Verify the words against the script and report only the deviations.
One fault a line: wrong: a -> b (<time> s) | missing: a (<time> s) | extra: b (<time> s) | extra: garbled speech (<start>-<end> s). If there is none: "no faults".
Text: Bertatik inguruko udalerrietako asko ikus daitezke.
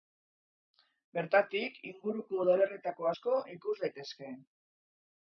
no faults